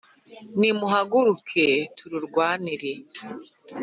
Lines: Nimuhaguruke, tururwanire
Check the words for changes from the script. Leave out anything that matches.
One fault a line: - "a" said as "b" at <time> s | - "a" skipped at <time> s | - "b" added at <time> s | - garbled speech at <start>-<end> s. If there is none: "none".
none